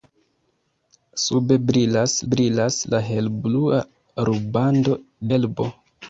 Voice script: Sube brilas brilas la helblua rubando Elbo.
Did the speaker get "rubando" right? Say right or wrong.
right